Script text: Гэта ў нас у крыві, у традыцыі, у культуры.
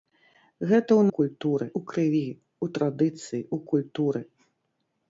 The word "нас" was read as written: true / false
false